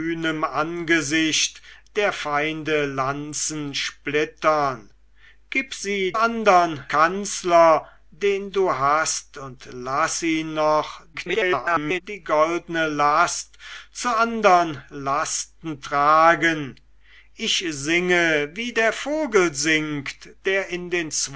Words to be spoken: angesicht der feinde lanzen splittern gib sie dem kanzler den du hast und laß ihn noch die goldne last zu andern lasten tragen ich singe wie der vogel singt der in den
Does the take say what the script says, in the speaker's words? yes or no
no